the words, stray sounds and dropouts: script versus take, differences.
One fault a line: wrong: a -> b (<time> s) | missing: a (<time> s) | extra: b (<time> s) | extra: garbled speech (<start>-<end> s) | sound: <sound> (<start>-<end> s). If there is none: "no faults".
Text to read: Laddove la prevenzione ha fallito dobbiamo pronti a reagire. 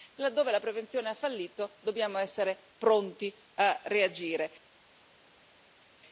extra: essere (2.2 s)